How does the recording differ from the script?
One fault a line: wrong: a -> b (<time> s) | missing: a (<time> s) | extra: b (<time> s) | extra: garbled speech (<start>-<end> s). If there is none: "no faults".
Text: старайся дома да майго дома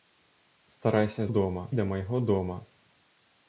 no faults